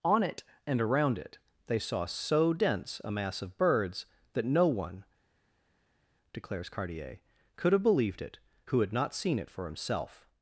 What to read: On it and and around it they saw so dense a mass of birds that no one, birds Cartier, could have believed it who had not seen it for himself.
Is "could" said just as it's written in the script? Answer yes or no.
yes